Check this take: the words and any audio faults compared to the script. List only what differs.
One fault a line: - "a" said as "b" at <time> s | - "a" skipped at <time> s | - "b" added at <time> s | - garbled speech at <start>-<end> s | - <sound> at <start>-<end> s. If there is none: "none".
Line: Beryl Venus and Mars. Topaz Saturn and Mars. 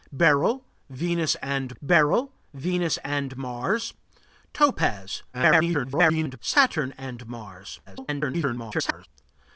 - "beryl Venus and" added at 1.8 s
- garbled speech at 5.3-6.4 s
- garbled speech at 7.9-9.1 s